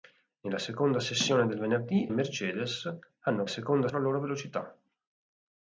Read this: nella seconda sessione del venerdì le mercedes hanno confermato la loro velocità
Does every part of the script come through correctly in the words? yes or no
no